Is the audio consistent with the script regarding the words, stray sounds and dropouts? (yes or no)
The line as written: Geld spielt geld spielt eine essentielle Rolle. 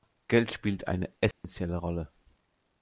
no